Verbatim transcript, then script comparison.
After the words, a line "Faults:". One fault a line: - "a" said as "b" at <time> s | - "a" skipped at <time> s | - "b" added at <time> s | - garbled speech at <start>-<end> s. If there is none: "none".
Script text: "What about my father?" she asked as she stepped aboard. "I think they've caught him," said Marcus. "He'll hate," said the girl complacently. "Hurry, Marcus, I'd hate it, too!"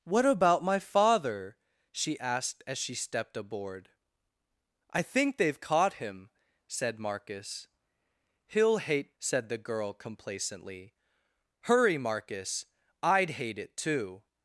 "What about my father?" she asked as she stepped aboard. "I think they've caught him," said Marcus. "He'll hate," said the girl complacently. "Hurry, Marcus, I'd hate it, too!"
Faults:
none